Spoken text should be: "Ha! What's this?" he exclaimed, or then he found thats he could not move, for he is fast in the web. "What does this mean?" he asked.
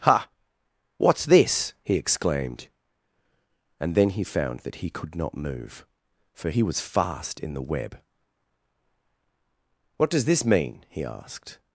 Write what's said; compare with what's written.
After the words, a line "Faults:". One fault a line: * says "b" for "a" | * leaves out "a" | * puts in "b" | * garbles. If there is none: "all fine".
"Ha! What's this?" he exclaimed, and then he found that he could not move, for he was fast in the web. "What does this mean?" he asked.
Faults:
* says "and" for "or"
* says "that" for "thats"
* says "was" for "is"